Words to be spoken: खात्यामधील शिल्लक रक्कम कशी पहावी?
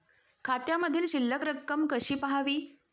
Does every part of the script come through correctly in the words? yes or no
yes